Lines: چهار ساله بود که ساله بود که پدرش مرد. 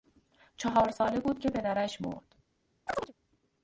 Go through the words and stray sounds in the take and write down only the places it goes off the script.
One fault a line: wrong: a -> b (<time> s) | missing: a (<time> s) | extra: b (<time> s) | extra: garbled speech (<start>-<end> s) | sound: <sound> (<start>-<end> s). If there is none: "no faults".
missing: ساله بود که (1.5 s)
sound: chirp (2.9-3.1 s)